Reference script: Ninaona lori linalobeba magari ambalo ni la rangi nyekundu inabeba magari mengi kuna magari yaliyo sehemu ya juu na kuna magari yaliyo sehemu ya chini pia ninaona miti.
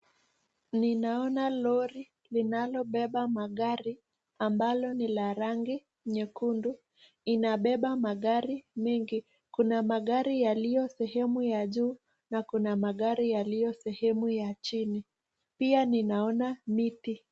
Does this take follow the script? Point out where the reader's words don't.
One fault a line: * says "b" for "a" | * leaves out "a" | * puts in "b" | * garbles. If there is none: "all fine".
all fine